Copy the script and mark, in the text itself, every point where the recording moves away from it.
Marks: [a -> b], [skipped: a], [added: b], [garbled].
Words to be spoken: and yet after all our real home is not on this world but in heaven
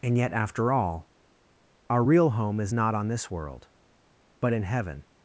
and yet after all our real home is not on this world but in heaven